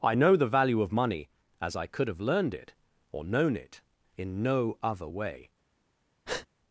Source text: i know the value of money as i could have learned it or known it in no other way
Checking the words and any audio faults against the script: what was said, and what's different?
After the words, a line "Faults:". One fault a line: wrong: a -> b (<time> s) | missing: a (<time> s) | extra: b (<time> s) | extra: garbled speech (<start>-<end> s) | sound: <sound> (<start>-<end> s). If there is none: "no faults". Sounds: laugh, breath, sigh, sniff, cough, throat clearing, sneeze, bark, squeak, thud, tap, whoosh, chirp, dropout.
i know the value of money as i could have learned it or known it in no other way
Faults:
sound: breath (6.3-6.5 s)